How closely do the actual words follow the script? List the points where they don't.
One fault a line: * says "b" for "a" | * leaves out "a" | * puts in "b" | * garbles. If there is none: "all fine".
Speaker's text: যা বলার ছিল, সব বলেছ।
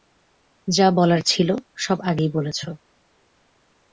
* puts in "আগেই"